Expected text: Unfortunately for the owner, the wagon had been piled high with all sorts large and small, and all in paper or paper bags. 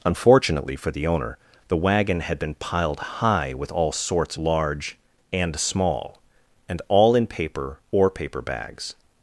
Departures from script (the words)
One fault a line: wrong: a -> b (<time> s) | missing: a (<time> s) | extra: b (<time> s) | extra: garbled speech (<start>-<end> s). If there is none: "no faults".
no faults